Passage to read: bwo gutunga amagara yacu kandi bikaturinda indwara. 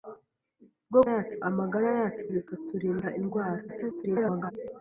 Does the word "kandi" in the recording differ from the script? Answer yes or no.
yes